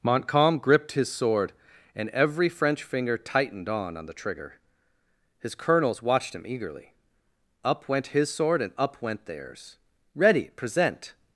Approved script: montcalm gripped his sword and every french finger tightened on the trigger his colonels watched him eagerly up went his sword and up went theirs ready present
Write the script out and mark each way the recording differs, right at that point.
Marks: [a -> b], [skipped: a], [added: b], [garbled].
montcalm gripped his sword and every french finger tightened on [added: on] the trigger his colonels watched him eagerly up went his sword and up went theirs ready present